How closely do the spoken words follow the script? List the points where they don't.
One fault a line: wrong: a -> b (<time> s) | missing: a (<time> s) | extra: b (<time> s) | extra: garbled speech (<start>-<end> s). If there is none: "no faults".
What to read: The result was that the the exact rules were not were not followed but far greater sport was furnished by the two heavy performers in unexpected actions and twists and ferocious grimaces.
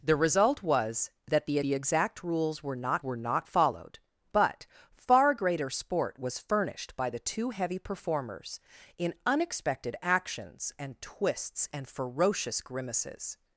no faults